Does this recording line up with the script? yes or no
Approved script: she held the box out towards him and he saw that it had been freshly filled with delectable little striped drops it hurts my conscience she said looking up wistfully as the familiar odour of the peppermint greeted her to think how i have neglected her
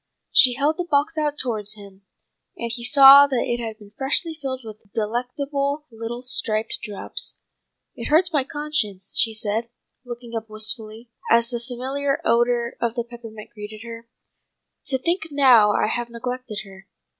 yes